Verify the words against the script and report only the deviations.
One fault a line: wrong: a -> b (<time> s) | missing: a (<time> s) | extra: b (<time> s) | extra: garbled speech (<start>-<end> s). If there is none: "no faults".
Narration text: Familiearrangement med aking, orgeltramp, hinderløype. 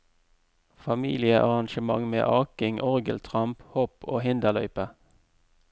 extra: hopp og (3.7 s)